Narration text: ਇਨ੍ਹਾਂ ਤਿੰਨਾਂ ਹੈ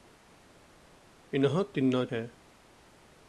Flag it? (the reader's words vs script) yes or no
no